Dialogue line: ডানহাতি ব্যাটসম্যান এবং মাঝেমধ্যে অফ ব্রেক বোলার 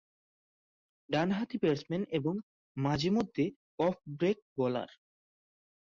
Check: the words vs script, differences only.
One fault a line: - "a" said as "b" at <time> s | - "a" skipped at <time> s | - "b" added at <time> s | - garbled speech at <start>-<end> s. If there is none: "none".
none